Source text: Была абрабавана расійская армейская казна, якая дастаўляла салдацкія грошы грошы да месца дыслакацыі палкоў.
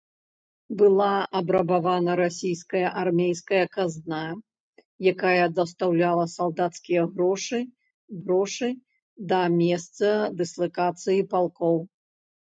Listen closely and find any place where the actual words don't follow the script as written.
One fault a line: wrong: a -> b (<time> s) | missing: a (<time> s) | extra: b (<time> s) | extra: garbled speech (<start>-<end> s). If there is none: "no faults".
no faults